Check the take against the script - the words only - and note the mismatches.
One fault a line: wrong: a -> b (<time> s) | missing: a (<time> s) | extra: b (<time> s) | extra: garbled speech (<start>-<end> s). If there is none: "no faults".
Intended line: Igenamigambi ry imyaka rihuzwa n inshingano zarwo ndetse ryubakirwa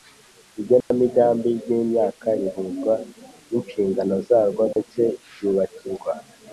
no faults